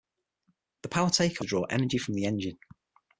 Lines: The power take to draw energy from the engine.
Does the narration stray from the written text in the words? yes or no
no